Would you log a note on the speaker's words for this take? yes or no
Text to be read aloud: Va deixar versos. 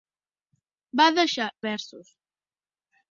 no